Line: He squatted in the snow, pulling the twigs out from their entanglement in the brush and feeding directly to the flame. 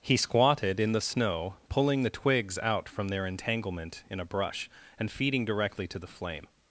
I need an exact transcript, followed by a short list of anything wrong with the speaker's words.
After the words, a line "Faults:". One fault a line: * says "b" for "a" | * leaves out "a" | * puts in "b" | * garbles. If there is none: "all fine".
He squatted in the snow, pulling the twigs out from their entanglement in a brush and feeding directly to the flame.
Faults:
* says "a" for "the"